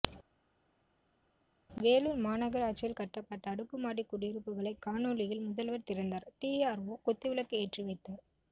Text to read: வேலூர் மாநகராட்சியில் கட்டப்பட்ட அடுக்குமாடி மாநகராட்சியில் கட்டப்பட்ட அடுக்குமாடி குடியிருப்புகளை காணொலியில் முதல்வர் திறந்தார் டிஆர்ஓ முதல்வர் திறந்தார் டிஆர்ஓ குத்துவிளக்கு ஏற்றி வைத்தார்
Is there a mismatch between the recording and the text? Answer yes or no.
yes